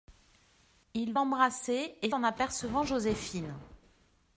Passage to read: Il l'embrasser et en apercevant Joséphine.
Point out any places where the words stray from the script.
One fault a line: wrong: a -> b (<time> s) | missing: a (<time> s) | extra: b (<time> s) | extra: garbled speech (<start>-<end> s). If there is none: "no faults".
no faults